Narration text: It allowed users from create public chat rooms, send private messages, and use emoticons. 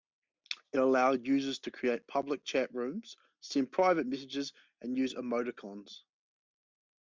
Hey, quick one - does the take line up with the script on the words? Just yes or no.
no